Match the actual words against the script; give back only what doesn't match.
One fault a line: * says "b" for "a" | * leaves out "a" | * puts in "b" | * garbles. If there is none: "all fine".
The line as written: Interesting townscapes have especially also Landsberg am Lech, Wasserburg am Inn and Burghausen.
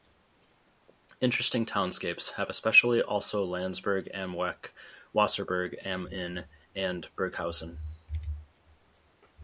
all fine